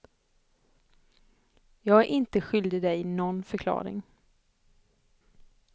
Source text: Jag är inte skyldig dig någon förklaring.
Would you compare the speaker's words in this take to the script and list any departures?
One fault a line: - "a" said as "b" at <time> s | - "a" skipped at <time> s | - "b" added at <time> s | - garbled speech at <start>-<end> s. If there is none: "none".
none